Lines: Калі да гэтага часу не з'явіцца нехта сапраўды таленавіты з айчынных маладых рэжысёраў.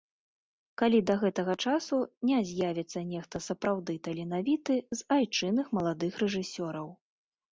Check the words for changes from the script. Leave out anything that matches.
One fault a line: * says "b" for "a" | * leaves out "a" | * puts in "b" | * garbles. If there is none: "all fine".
all fine